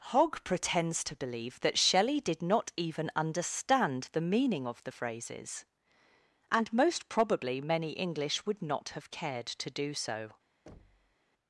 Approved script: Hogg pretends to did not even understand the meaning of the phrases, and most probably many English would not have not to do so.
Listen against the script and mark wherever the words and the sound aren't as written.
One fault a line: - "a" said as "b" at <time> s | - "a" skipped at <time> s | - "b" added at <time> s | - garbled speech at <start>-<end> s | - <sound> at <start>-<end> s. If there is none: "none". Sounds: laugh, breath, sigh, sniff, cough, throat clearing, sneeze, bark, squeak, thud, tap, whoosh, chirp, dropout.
- "believe that Shelley" added at 1.1 s
- "not" said as "cared" at 9.1 s
- thud at 10.7-11.2 s